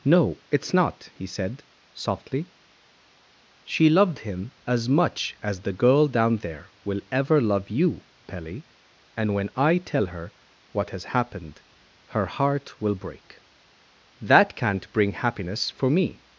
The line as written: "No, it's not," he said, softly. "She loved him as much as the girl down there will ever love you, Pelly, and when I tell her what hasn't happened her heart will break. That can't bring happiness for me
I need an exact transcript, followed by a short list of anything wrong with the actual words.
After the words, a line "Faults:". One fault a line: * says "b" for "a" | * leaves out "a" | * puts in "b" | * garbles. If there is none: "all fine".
"No, it's not," he said, softly. "She loved him as much as the girl down there will ever love you, Pelly, and when I tell her what has happened her heart will break. That can't bring happiness for me
Faults:
* says "has" for "hasn't"